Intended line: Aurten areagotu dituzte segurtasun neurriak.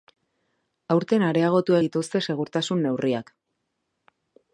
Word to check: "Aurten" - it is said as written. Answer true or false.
true